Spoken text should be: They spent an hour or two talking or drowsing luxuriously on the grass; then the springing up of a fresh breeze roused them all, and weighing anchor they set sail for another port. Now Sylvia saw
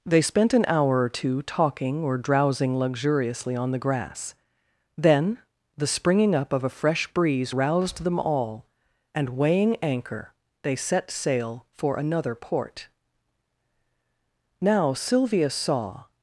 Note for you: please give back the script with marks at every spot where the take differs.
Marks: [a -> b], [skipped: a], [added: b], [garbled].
They spent an hour or two talking or drowsing luxuriously on the grass; then the springing up of a fresh breeze roused them all, and weighing anchor they set sail for another port. Now Sylvia saw